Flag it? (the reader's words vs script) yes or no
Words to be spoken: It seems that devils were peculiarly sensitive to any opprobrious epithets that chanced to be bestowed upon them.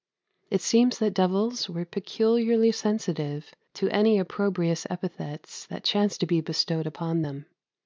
no